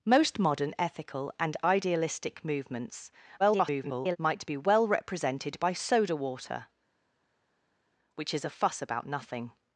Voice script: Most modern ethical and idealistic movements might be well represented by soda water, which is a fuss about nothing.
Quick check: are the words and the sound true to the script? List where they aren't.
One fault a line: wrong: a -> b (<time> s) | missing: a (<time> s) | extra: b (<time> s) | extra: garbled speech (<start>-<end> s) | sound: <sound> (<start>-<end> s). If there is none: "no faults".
extra: garbled speech (3.4-4.2 s)